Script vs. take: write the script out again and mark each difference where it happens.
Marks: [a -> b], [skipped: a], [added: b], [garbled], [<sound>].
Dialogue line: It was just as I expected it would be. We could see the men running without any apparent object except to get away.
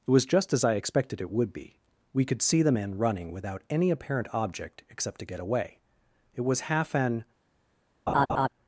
It was just as I expected it would be. We could see the men running without any apparent object except to get away. [added: It was half an] [laugh]